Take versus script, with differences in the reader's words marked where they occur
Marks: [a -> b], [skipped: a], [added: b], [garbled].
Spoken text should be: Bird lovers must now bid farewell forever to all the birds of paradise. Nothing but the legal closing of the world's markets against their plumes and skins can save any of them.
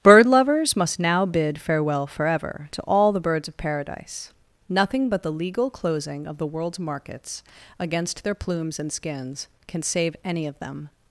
Bird lovers must now bid farewell forever to all the birds of paradise. Nothing but the legal closing of the world's markets against their plumes and skins can save any of them.